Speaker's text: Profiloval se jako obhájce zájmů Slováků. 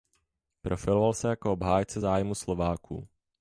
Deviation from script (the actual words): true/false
false